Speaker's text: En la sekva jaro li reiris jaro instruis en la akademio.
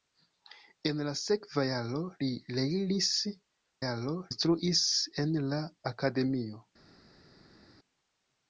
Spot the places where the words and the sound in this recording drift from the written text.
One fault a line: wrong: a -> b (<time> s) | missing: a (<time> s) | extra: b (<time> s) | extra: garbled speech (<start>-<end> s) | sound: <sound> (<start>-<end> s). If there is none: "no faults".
no faults